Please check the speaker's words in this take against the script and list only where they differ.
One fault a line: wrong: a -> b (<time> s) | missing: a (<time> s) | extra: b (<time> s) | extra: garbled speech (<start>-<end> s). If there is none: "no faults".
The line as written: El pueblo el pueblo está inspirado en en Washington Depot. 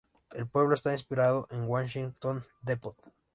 missing: el pueblo (0.7 s)
missing: en (1.7 s)